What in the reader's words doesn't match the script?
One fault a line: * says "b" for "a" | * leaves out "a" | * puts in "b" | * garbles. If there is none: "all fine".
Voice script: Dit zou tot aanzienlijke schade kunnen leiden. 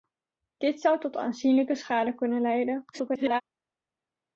* garbles